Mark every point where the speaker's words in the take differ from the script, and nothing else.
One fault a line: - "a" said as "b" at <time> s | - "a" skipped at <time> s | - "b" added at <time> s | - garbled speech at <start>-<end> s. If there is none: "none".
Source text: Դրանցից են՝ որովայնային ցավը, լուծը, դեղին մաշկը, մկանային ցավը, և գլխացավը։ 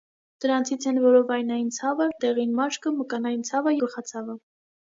- "լուծը" skipped at 2.1 s
- "և" skipped at 3.8 s